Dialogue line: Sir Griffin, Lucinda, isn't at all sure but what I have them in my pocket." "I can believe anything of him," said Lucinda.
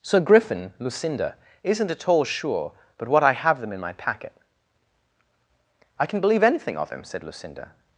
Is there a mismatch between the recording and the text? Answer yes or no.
yes